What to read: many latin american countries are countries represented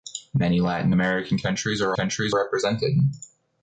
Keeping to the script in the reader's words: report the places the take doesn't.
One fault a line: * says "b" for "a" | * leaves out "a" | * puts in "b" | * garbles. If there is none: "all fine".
all fine